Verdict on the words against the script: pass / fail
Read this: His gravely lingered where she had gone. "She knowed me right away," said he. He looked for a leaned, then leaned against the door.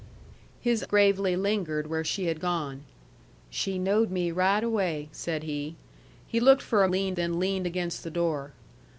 pass